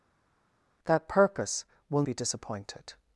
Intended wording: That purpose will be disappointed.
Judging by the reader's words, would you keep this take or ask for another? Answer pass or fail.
pass